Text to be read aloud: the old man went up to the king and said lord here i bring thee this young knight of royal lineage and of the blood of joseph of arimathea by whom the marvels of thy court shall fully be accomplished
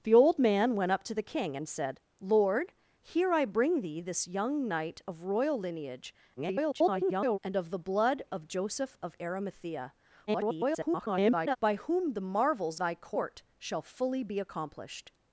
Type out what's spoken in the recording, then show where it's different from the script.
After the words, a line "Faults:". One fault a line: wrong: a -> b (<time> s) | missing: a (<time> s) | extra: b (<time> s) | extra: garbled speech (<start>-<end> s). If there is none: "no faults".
the old man went up to the king and said lord here i bring thee this young knight of royal lineage [garbled] and of the blood of joseph of arimathea [garbled] by whom the marvels thy court shall fully be accomplished
Faults:
extra: garbled speech (6.4-7.4 s)
extra: garbled speech (10.3-11.6 s)
missing: of (12.8 s)